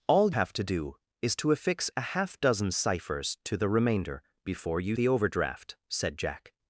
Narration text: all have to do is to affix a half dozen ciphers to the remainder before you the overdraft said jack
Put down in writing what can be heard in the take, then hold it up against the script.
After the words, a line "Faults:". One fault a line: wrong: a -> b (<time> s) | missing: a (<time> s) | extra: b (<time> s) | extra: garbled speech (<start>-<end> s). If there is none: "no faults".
all have to do is to affix a half dozen ciphers to the remainder before you the overdraft said jack
Faults:
no faults